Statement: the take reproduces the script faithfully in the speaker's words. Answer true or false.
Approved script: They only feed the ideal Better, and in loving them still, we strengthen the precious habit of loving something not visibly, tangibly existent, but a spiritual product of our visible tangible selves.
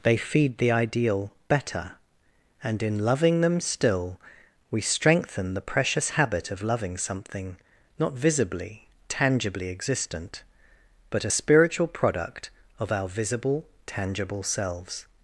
false